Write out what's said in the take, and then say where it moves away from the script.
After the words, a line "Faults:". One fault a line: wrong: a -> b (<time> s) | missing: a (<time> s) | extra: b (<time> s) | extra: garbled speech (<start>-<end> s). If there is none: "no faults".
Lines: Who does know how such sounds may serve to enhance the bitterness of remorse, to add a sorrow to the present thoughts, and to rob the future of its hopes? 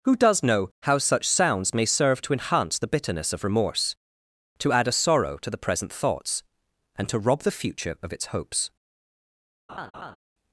Who does know how such sounds may serve to enhance the bitterness of remorse, to add a sorrow to the present thoughts, and to rob the future of its hopes?
Faults:
no faults